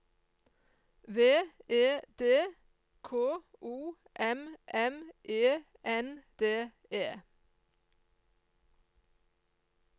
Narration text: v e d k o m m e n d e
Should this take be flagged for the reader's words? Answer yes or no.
no